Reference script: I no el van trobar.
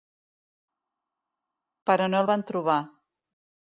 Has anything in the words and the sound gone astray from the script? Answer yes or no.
yes